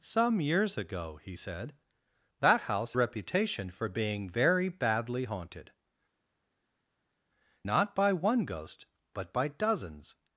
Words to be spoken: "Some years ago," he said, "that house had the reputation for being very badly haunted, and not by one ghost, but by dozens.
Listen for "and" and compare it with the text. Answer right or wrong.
wrong